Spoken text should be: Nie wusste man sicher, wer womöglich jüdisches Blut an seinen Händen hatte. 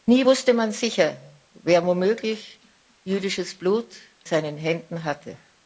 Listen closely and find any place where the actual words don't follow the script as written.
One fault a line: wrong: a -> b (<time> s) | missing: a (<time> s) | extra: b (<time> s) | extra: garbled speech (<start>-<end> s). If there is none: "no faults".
missing: an (3.9 s)